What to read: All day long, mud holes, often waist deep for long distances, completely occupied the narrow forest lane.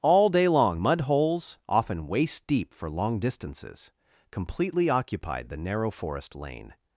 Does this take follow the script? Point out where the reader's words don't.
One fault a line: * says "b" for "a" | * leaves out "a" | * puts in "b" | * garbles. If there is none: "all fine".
all fine